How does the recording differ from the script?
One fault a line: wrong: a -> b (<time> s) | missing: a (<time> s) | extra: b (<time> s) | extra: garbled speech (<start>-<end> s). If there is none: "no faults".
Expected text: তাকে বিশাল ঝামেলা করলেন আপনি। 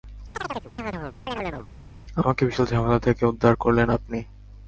wrong: তাকে -> আমাকে (2.2 s)
extra: থেকে উদ্ধার (3.0 s)